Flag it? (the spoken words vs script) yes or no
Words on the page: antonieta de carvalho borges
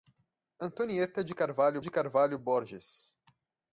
yes